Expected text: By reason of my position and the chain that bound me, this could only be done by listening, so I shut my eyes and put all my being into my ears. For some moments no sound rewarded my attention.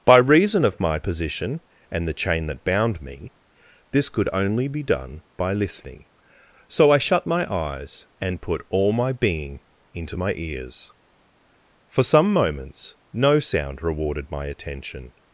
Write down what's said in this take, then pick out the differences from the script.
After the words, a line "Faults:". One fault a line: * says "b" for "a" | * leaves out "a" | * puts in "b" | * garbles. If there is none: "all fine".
By reason of my position and the chain that bound me, this could only be done by listening, so I shut my eyes and put all my being into my ears. For some moments no sound rewarded my attention.
Faults:
all fine